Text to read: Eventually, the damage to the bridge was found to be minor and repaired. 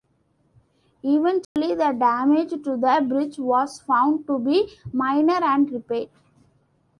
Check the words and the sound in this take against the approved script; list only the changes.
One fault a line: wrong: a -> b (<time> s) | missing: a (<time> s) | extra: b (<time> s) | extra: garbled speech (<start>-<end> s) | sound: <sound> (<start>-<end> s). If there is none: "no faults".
sound: dropout (1.4-1.6 s)